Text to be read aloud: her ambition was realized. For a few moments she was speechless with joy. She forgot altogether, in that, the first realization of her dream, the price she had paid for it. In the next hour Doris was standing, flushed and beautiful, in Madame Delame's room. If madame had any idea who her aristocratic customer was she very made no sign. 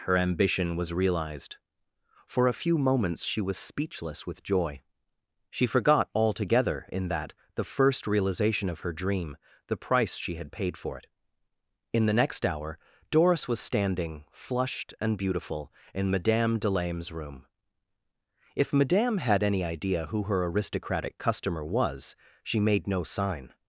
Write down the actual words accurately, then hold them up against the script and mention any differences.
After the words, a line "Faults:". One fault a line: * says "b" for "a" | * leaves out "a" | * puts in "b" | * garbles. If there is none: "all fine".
her ambition was realized. For a few moments she was speechless with joy. She forgot altogether, in that, the first realization of her dream, the price she had paid for it. In the next hour Doris was standing, flushed and beautiful, in Madame Delame's room. If madame had any idea who her aristocratic customer was she made no sign.
Faults:
* leaves out "very"